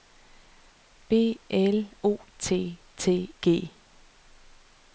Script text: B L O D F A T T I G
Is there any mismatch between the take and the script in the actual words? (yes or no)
yes